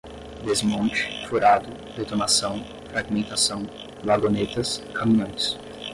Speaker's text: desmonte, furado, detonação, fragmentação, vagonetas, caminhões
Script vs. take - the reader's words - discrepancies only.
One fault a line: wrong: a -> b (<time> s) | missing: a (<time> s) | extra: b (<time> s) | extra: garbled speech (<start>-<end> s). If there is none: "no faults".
no faults